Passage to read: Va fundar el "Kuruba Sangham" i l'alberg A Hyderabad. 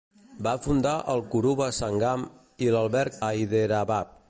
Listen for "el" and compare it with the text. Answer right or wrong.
right